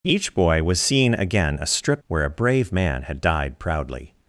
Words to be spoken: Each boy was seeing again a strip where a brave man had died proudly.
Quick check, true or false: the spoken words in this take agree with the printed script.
true